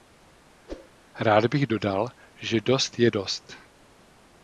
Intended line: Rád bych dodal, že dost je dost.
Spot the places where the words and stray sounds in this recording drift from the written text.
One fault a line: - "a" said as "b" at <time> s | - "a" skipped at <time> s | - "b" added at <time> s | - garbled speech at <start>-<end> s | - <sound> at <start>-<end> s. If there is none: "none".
- whoosh at 0.7-0.9 s